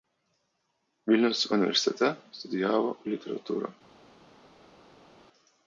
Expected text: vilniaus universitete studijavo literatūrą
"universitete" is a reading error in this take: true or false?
false